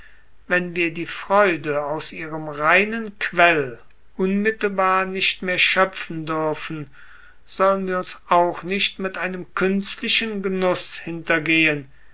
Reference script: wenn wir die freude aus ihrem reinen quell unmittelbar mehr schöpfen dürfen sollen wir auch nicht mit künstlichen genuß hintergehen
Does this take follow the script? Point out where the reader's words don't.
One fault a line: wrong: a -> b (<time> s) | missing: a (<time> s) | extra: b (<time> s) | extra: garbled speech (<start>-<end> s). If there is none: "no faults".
extra: nicht (5.0 s)
extra: uns (8.0 s)
extra: einem (9.2 s)